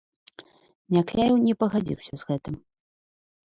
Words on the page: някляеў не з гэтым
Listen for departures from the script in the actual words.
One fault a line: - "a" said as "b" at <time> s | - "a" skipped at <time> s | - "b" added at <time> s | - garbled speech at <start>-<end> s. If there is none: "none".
- "пагадзіўся" added at 1.6 s